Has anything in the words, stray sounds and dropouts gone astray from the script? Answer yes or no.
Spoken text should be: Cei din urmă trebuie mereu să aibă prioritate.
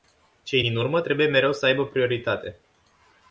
no